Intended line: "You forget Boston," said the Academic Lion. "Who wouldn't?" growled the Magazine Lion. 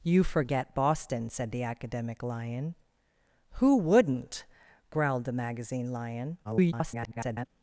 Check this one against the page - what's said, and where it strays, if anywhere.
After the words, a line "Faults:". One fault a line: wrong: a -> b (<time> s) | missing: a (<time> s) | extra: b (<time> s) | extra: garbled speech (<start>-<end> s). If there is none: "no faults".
"You forget Boston," said the Academic Lion. "Who wouldn't?" growled the Magazine Lion. [garbled]
Faults:
extra: garbled speech (6.4-7.5 s)